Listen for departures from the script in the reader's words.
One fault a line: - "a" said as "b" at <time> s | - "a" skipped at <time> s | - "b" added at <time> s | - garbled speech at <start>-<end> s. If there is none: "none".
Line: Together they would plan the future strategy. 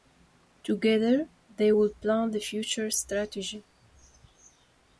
none